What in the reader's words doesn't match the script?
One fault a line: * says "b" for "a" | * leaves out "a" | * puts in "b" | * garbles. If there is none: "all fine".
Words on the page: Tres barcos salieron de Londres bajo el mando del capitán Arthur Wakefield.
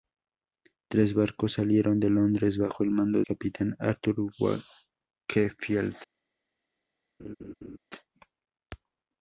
* leaves out "del"